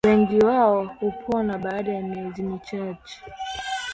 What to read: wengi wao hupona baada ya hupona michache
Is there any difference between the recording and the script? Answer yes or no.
yes